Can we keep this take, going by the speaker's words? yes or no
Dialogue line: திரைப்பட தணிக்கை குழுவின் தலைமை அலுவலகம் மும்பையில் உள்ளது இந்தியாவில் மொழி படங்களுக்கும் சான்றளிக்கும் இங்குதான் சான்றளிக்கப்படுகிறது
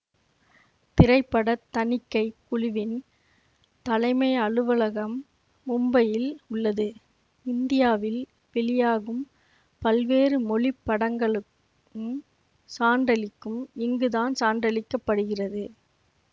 no